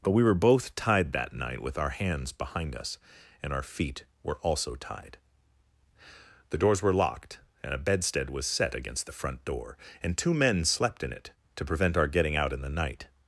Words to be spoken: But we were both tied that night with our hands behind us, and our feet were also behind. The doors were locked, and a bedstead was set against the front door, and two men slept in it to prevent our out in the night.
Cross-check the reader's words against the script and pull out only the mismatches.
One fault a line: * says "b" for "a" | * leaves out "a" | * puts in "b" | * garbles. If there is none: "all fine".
* says "tied" for "behind"
* puts in "getting"